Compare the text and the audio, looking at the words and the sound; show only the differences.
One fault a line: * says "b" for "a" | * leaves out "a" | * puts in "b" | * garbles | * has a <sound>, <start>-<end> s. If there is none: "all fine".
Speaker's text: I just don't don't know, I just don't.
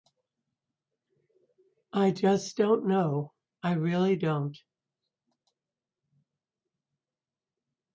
* leaves out "don't"
* says "really" for "just"